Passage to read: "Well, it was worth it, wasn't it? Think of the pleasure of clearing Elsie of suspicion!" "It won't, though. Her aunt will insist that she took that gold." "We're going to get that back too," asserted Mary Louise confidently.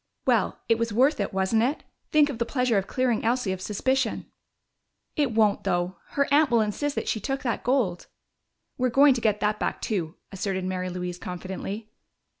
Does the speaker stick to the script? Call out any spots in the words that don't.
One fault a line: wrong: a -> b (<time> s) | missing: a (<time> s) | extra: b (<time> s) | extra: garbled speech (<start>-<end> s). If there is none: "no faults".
no faults